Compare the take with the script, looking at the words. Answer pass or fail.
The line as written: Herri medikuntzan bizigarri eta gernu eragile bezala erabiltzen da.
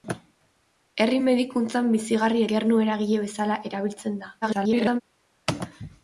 fail